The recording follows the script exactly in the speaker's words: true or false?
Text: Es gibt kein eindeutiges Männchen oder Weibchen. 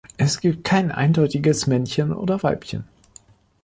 true